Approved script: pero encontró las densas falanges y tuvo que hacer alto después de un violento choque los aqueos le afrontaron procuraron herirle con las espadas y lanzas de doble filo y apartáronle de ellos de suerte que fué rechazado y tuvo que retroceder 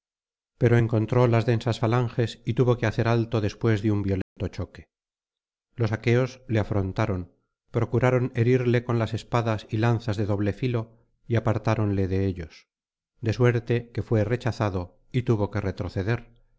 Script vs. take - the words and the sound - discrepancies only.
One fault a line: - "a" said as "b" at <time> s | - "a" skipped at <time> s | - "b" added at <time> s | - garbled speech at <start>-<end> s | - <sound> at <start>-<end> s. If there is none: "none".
- dropout at 4.2-4.4 s